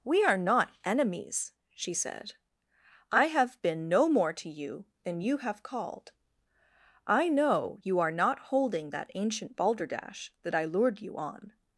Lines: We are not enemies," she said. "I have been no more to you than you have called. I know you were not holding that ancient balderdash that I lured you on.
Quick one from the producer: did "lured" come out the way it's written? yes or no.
yes